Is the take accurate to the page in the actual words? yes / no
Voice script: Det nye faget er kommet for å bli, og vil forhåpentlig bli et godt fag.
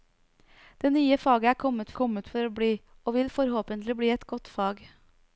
no